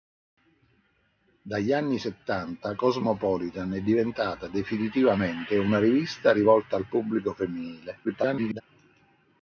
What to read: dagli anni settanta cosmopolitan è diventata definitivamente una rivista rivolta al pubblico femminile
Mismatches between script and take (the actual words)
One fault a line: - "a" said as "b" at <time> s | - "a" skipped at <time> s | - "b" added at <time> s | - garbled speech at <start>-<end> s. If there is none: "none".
- garbled speech at 8.0-8.6 s